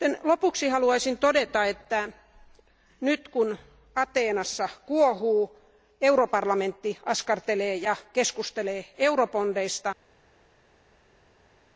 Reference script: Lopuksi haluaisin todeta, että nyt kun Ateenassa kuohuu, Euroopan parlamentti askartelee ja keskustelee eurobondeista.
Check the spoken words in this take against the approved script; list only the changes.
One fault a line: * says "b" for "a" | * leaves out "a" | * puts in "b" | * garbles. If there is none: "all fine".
all fine